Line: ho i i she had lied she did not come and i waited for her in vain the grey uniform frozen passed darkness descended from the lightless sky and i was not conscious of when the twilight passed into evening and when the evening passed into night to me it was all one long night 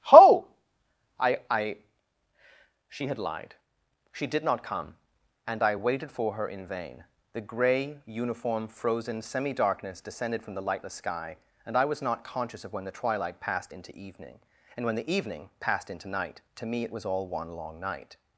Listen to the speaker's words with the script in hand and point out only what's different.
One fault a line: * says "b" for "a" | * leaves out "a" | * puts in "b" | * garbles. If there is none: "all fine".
* says "semi" for "passed"